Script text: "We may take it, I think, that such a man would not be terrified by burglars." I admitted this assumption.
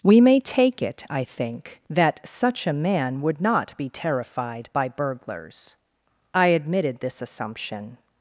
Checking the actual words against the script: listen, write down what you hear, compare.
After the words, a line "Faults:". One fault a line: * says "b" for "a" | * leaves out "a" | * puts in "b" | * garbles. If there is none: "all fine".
"We may take it, I think, that such a man would not be terrified by burglars." I admitted this assumption.
Faults:
all fine